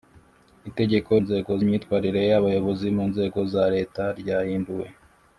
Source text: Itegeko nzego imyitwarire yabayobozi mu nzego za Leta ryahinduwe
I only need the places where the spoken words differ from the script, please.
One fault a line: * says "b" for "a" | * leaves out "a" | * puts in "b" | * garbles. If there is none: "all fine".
all fine